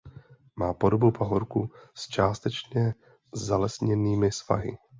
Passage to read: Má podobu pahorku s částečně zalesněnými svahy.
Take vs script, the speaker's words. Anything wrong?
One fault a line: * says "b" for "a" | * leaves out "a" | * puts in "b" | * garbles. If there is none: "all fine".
all fine